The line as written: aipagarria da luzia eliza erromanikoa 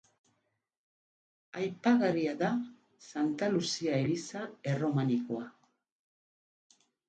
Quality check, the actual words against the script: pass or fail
fail